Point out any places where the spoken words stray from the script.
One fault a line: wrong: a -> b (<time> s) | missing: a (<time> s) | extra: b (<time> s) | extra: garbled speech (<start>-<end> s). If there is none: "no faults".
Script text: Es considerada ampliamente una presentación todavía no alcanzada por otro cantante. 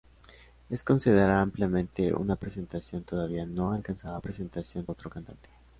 wrong: por -> presentación (4.2 s)